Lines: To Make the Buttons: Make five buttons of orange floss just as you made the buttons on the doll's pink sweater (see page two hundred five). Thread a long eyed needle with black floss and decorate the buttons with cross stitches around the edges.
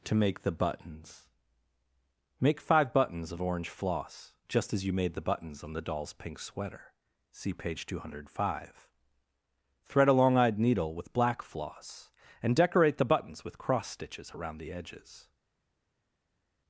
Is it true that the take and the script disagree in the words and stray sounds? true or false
false